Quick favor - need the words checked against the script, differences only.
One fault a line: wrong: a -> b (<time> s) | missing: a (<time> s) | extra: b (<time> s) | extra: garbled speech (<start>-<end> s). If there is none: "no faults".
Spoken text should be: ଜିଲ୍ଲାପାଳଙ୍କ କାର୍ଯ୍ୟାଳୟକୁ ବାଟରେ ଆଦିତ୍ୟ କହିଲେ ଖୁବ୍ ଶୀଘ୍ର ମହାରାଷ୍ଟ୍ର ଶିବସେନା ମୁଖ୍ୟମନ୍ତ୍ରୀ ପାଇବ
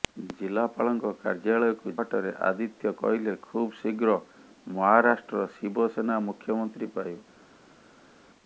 no faults